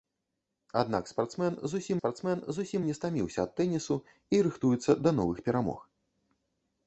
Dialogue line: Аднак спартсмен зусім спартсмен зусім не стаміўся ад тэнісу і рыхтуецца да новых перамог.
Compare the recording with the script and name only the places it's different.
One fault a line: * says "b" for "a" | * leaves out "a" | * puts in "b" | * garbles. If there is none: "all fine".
all fine